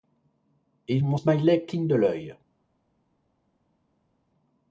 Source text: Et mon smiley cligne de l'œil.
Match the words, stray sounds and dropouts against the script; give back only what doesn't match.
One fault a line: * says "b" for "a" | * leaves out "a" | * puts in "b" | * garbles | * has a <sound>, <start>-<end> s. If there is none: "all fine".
all fine